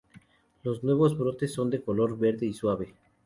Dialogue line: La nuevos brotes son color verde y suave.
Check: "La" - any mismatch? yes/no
yes